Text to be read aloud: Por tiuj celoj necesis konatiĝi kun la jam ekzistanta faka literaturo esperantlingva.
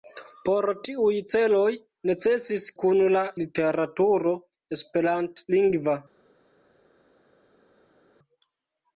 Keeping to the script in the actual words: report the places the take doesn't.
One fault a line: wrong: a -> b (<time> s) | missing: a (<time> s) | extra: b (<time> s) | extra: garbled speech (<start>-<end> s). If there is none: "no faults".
missing: konatiĝi (2.6 s)
missing: jam ekzistanta faka (3.2 s)